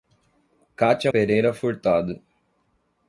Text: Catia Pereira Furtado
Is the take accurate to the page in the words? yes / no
yes